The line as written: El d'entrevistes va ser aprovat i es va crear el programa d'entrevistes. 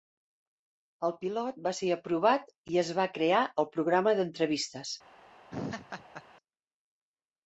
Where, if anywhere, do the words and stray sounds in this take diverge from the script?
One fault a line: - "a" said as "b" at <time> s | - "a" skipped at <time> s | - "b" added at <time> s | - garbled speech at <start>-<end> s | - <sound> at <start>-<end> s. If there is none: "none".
- "d'entrevistes" said as "pilot" at 1.2 s
- laugh at 5.5-6.2 s